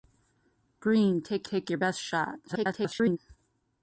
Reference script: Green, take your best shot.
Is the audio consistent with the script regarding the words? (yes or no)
no